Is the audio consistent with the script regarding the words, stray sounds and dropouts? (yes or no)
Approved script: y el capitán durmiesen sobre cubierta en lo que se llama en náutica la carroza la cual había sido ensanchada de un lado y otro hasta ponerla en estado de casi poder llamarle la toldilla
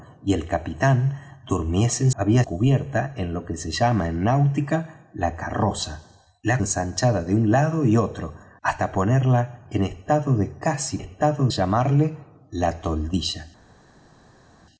no